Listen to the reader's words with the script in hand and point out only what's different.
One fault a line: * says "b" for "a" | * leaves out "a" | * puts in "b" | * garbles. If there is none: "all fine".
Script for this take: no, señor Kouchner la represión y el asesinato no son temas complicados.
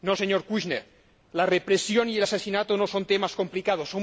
all fine